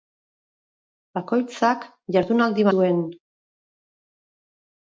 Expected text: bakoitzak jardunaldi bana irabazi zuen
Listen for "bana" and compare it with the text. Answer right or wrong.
wrong